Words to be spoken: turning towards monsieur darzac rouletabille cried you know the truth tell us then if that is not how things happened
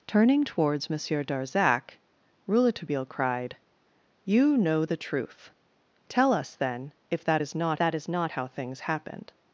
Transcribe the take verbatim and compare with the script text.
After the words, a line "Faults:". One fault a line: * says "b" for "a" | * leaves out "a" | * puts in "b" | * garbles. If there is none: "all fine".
turning towards monsieur darzac rouletabille cried you know the truth tell us then if that is not that is not how things happened
Faults:
* puts in "that is not"